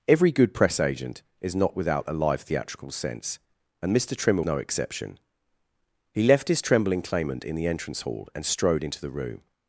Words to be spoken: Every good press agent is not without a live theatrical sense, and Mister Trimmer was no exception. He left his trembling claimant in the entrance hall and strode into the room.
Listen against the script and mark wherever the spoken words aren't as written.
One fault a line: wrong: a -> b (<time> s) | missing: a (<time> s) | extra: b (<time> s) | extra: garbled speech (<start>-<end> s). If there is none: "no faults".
missing: was (4.4 s)